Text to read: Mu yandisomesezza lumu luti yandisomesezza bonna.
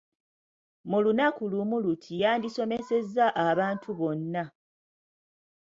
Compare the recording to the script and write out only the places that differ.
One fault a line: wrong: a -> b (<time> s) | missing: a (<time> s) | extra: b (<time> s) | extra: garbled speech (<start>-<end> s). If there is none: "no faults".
wrong: yandisomesezza -> lunaku (1.0 s)
extra: abantu (3.5 s)